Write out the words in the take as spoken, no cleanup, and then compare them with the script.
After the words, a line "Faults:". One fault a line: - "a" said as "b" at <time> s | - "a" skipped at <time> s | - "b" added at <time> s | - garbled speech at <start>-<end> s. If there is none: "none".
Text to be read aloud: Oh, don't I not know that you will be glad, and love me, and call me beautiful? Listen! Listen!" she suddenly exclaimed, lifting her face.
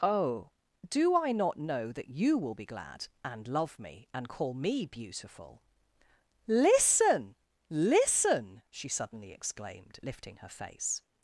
Oh, do I not know that you will be glad, and love me, and call me beautiful? Listen! Listen!" she suddenly exclaimed, lifting her face.
Faults:
- "don't" said as "do" at 0.9 s